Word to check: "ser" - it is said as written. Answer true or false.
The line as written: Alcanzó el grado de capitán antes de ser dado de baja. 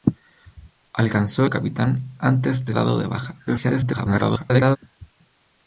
false